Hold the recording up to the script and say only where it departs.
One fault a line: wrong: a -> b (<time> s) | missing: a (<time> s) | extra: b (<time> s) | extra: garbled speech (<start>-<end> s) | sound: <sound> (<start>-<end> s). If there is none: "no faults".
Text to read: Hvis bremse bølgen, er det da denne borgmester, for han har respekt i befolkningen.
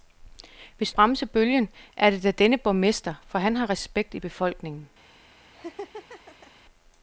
sound: laugh (5.5-6.5 s)